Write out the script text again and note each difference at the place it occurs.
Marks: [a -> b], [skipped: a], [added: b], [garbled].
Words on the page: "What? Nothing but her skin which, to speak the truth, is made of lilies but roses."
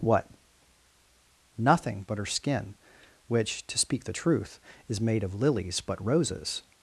"What? Nothing but her skin which, to speak the truth, is made of lilies but roses."